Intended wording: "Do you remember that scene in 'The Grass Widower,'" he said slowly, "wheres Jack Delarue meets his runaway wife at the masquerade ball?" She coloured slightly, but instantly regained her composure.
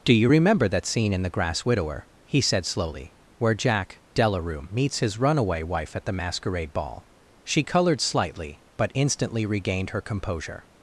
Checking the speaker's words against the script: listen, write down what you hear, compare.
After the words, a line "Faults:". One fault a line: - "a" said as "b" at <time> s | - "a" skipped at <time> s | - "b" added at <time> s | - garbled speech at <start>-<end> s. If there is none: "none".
"Do you remember that scene in 'The Grass Widower,'" he said slowly, "where Jack Delarue meets his runaway wife at the masquerade ball?" She coloured slightly, but instantly regained her composure.
Faults:
- "wheres" said as "where" at 3.4 s